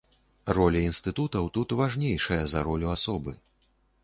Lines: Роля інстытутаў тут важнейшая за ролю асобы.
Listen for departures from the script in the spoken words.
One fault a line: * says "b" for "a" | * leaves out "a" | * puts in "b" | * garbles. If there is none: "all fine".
all fine